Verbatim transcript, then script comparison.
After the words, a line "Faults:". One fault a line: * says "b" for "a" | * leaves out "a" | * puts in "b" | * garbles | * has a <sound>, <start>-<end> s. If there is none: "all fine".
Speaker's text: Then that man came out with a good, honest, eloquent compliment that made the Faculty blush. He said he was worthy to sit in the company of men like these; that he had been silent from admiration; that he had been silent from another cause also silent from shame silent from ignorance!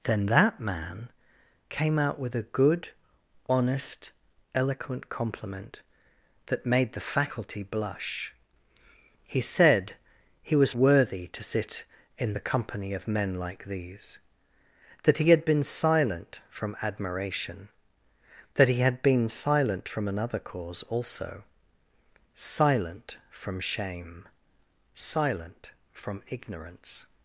Then that man came out with a good, honest, eloquent compliment that made the Faculty blush. He said he was worthy to sit in the company of men like these; that he had been silent from admiration; that he had been silent from another cause also silent from shame silent from ignorance!
Faults:
all fine